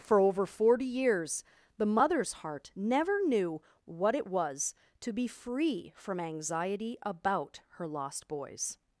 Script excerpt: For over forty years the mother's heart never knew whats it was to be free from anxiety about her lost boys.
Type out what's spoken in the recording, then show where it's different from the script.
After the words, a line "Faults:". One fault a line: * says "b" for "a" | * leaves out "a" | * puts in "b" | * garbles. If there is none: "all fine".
For over forty years the mother's heart never knew what it was to be free from anxiety about her lost boys.
Faults:
* says "what" for "whats"